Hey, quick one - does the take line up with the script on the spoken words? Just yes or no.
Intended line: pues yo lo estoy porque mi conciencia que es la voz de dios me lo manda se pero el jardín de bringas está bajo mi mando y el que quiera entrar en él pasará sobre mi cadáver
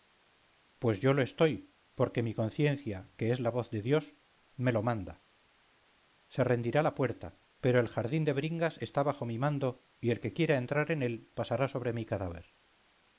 no